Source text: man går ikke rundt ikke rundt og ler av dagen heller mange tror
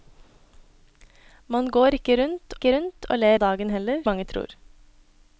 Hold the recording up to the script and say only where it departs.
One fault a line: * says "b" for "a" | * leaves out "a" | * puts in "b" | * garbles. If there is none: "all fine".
all fine